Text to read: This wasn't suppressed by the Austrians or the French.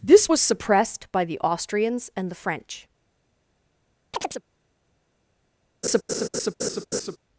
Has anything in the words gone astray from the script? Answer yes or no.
yes